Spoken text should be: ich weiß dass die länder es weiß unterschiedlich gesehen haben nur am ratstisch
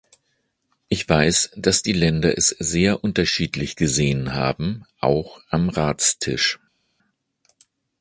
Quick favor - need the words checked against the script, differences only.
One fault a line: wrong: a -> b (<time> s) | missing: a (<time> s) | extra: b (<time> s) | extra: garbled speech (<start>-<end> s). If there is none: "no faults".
wrong: weiß -> sehr (2.6 s)
wrong: nur -> auch (5.0 s)